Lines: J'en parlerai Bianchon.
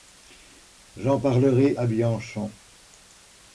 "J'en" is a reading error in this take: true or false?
false